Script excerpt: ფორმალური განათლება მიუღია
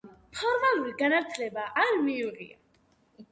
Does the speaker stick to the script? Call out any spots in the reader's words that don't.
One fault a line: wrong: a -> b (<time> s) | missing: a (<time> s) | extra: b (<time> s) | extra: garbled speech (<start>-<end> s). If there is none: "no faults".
extra: არ (1.8 s)